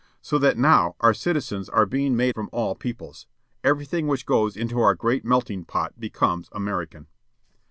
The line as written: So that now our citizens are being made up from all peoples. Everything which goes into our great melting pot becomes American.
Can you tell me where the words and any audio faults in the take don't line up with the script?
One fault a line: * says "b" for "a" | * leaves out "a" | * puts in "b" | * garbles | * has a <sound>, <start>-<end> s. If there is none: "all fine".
* leaves out "up"